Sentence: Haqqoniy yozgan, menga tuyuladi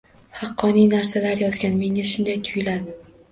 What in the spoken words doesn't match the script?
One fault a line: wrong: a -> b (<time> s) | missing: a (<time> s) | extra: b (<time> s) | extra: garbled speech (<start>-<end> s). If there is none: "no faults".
extra: narsalar (0.9 s)
extra: shunday (2.1 s)